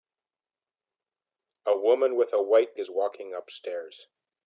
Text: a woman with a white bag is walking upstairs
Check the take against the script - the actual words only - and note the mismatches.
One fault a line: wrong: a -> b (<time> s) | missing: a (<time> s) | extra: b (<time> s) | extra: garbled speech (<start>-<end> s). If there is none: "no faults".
missing: bag (2.8 s)